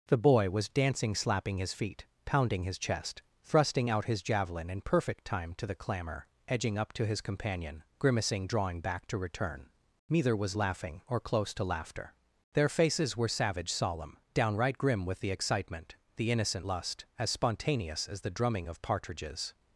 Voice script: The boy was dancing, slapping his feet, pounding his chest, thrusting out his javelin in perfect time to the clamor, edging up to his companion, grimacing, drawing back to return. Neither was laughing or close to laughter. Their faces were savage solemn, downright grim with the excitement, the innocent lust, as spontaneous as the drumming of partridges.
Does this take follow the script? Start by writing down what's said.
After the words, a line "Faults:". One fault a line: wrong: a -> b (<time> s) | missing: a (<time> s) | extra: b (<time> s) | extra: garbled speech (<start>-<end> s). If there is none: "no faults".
The boy was dancing, slapping his feet, pounding his chest, thrusting out his javelin in perfect time to the clamor, edging up to his companion, grimacing, drawing back to return. Neither was laughing or close to laughter. Their faces were savage solemn, downright grim with the excitement, the innocent lust, as spontaneous as the drumming of partridges.
Faults:
no faults